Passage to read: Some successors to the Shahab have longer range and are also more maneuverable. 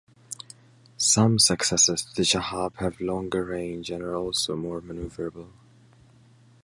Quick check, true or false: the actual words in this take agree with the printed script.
true